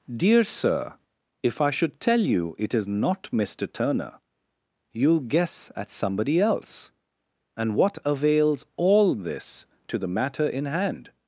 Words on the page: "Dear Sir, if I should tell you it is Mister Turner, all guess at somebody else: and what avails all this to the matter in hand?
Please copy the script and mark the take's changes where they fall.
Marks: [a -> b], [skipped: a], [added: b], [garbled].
"Dear Sir, if I should tell you it is [added: not] Mister Turner, [all -> you'll] guess at somebody else: and what avails all this to the matter in hand?